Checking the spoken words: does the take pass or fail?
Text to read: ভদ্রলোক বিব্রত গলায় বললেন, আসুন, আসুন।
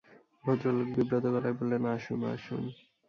pass